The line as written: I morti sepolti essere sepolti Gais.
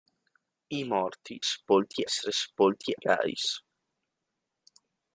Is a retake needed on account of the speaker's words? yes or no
no